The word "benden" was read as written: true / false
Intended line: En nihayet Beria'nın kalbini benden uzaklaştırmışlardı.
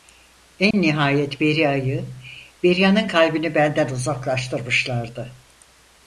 true